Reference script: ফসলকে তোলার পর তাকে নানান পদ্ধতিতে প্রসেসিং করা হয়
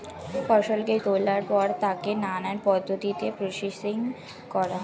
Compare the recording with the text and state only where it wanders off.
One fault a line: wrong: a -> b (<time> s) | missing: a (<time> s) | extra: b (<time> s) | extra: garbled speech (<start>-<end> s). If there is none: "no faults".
no faults